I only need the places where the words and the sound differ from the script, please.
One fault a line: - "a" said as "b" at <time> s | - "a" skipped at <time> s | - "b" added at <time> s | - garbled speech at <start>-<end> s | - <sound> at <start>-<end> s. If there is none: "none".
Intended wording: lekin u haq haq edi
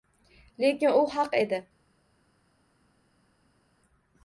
- "haq" skipped at 1.4 s